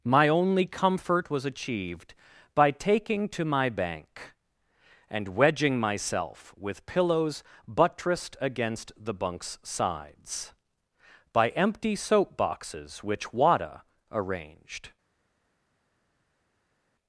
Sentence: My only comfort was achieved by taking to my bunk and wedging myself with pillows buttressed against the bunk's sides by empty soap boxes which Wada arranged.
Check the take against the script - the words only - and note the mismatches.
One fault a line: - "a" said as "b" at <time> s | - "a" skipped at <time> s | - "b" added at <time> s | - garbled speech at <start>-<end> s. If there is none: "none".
- "bunk" said as "bank" at 3.7 s